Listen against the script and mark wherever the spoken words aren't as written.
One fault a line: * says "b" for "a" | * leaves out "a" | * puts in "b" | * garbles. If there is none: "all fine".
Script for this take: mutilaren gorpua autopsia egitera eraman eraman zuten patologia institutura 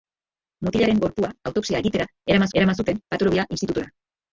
all fine